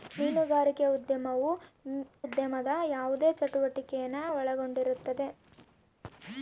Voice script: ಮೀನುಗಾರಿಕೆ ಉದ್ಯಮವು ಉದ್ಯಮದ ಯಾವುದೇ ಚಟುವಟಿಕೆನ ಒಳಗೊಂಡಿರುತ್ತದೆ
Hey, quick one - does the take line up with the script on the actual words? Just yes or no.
yes